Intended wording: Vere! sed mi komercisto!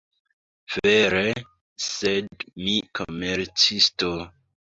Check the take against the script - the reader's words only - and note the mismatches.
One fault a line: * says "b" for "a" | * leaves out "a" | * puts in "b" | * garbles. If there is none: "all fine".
all fine